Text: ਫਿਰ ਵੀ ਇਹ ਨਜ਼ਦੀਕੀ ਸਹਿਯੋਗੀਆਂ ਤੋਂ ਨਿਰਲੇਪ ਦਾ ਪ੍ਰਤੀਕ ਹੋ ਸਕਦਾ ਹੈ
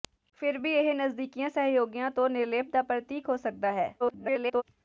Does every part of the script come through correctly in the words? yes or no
no